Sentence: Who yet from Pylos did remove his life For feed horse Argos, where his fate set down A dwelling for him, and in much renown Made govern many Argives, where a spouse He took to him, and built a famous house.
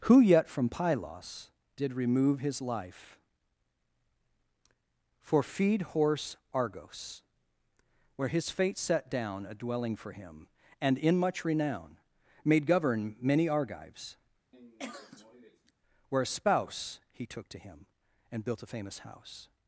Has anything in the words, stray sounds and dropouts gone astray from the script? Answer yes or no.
yes